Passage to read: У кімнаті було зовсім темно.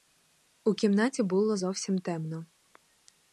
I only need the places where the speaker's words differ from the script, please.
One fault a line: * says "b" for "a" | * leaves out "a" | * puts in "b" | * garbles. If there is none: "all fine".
all fine